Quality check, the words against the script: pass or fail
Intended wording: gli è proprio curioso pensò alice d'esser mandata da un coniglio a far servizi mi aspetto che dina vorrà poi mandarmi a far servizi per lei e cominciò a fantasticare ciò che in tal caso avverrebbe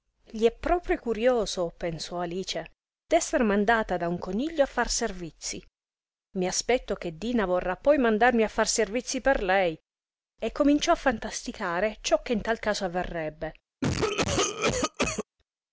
pass